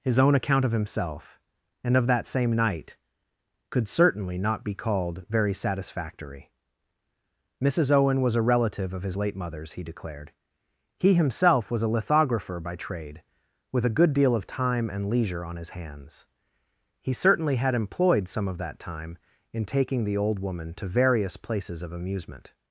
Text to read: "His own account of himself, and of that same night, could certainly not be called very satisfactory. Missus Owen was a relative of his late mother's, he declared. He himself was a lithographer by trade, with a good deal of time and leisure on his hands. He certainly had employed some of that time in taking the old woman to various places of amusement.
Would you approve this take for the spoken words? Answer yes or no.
yes